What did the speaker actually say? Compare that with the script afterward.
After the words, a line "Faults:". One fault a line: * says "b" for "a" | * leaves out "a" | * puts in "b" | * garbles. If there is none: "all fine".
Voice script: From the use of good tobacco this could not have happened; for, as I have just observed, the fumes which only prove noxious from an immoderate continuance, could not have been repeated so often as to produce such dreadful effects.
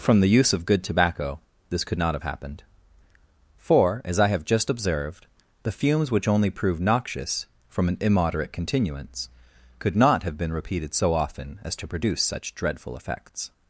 From the use of good tobacco this could not have happened; for, as I have just observed, the fumes which only prove noxious from an immoderate continuance, could not have been repeated so often as to produce such dreadful effects.
Faults:
all fine